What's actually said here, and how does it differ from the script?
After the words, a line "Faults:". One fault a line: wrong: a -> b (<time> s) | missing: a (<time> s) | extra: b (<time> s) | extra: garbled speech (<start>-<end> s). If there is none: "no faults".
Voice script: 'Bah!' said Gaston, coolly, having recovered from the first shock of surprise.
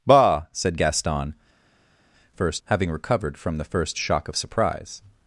'Bah!' said Gaston, first, having recovered from the first shock of surprise.
Faults:
wrong: coolly -> first (2.3 s)